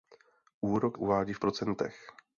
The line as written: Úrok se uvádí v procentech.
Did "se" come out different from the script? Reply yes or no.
yes